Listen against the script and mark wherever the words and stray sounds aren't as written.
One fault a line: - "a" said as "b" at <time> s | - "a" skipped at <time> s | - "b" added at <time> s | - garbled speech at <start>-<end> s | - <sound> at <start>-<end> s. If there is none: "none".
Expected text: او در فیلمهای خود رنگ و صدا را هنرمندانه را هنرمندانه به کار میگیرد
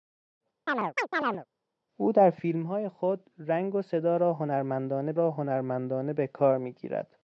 - chirp at 0.7-1.5 s